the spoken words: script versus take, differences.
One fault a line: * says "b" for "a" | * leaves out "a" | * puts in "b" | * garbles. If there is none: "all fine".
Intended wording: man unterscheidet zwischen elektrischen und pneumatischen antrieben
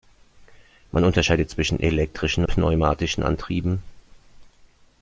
* leaves out "und"